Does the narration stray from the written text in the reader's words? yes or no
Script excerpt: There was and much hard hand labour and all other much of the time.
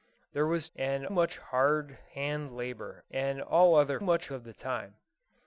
no